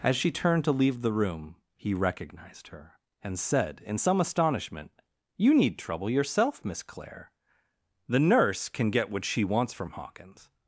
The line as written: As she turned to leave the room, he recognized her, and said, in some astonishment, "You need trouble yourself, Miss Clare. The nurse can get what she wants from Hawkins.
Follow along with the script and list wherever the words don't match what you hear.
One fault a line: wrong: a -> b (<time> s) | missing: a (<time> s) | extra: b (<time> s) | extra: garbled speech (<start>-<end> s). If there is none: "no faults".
no faults